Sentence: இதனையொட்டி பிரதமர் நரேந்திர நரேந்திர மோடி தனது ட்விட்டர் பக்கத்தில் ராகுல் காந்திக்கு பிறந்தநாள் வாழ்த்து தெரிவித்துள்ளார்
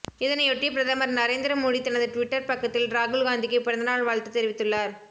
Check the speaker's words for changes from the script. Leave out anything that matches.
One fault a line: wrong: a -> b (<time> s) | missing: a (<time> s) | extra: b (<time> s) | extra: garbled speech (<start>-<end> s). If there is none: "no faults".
missing: நரேந்திர (1.6 s)